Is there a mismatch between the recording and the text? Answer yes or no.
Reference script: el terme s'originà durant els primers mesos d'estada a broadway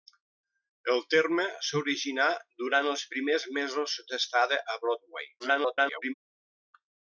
yes